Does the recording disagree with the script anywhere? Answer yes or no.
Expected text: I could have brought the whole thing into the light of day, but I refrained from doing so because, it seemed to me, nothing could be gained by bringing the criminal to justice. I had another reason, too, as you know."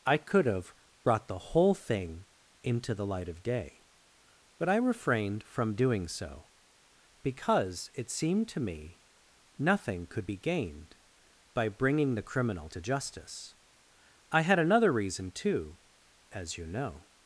no